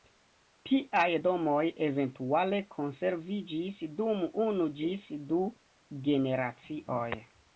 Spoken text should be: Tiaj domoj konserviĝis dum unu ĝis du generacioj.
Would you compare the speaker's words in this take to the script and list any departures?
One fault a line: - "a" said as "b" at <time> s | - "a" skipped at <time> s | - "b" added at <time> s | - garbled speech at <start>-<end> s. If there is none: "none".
- "eventuale" added at 1.9 s